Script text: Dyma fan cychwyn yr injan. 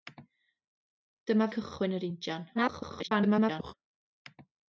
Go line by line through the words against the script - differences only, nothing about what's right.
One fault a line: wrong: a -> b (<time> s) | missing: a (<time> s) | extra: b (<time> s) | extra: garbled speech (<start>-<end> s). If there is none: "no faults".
missing: fan (1.5 s)
extra: garbled speech (2.5-3.7 s)